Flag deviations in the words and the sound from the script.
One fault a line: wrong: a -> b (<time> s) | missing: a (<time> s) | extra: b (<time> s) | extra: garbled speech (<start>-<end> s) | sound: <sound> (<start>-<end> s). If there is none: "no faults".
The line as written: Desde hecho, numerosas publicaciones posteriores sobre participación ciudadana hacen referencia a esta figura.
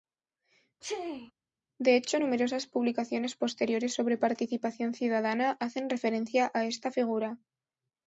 sound: sneeze (0.8-1.3 s)
wrong: Desde -> De (1.8 s)